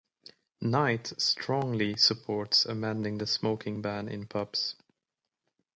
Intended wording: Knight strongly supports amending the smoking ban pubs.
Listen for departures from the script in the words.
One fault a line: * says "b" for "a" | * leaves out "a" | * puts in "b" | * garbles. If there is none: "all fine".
* puts in "in"